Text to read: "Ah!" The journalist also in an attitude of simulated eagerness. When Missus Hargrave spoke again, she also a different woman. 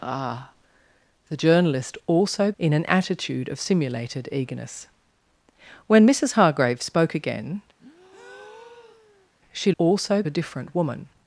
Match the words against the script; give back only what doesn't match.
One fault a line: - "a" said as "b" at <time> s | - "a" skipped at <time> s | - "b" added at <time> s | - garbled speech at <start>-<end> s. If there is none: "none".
none